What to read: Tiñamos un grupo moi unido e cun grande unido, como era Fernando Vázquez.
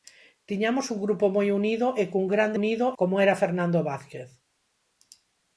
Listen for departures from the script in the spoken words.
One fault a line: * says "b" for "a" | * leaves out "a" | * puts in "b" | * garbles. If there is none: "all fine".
all fine